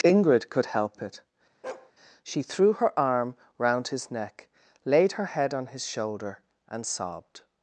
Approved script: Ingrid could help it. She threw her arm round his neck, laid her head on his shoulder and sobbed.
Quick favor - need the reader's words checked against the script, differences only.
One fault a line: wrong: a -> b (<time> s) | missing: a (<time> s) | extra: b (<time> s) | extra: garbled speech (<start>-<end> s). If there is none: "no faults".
no faults